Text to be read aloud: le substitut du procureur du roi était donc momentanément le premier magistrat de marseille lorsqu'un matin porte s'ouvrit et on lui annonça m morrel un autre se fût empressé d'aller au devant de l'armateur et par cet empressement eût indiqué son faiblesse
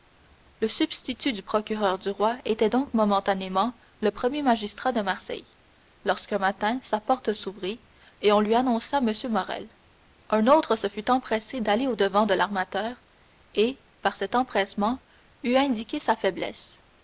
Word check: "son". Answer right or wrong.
wrong